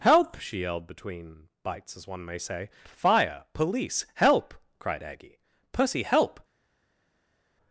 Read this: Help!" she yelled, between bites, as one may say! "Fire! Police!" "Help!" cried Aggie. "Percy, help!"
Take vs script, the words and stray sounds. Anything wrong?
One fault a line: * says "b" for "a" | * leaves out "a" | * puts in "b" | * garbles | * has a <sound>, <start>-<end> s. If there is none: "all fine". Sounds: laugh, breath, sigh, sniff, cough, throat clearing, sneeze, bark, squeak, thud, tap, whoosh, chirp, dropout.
all fine